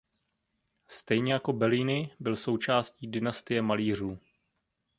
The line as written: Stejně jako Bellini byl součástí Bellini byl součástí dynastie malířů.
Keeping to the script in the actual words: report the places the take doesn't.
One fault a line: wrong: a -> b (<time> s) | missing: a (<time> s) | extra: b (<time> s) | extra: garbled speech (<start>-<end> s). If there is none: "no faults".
missing: Bellini byl součástí (3.1 s)